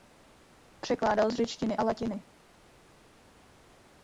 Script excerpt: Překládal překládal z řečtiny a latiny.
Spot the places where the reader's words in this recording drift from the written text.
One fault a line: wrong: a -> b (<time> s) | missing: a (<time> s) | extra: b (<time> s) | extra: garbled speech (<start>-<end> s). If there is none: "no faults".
missing: překládal (1.3 s)